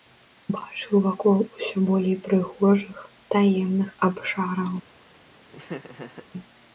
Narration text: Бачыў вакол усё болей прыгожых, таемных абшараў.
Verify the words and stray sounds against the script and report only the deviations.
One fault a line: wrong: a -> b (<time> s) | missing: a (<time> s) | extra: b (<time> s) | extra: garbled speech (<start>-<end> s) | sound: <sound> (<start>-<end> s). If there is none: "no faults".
sound: laugh (5.5-6.3 s)